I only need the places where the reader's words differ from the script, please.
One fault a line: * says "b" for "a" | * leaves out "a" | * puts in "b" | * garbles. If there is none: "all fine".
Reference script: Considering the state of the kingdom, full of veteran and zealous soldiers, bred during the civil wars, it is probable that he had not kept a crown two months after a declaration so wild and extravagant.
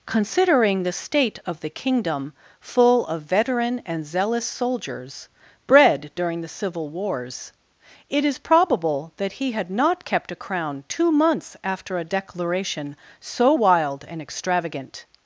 all fine